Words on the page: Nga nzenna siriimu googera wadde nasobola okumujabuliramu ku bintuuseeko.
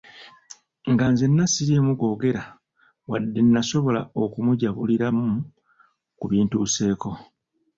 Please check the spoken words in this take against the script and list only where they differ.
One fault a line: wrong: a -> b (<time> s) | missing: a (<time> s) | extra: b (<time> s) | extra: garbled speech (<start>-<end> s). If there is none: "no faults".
no faults